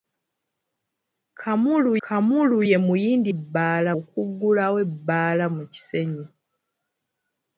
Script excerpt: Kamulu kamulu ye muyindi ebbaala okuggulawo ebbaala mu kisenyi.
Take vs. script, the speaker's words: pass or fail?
pass